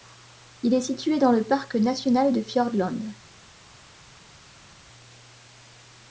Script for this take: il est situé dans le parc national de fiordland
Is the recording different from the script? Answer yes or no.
no